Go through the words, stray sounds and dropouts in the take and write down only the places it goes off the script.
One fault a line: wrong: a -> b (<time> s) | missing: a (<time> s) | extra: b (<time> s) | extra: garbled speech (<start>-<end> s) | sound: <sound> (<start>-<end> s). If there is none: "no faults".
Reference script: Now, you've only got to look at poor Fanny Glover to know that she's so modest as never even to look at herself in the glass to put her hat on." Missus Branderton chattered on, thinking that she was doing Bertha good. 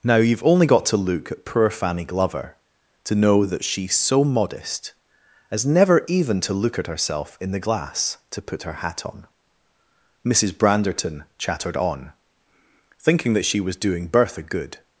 no faults